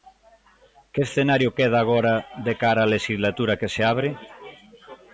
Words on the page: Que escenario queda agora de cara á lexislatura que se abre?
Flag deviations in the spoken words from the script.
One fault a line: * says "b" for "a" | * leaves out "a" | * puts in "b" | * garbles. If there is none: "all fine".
all fine